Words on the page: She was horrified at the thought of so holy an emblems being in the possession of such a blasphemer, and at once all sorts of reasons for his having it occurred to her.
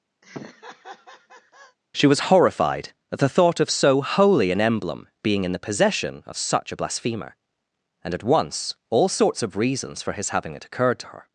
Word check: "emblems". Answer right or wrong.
wrong